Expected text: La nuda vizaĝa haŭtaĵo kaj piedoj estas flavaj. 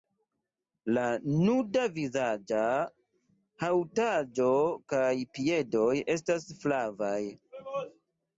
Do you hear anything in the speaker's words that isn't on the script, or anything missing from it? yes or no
no